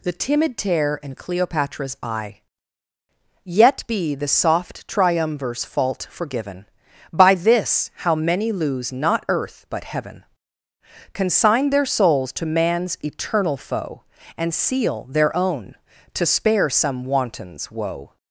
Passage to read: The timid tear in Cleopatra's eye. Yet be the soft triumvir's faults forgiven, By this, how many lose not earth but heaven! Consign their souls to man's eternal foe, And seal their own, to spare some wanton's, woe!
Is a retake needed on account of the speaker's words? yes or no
yes